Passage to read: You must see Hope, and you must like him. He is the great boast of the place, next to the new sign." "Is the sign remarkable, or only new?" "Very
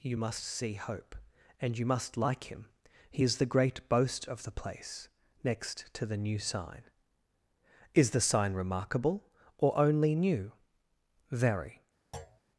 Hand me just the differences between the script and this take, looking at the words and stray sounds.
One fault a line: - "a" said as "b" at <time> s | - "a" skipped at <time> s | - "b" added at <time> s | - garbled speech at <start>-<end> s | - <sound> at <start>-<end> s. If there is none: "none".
- thud at 12.1-12.4 s